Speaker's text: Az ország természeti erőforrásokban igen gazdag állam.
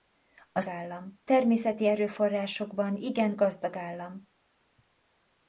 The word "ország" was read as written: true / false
false